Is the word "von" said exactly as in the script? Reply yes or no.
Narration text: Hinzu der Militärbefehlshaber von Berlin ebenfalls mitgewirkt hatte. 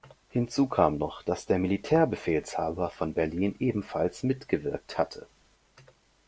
yes